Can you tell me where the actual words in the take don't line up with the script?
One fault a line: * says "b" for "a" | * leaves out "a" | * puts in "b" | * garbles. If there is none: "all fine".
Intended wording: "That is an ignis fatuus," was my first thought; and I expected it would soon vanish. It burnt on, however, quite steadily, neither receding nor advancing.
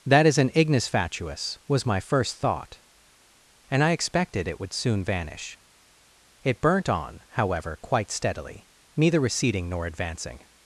all fine